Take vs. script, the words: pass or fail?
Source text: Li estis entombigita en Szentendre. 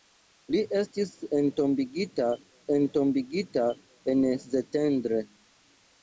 fail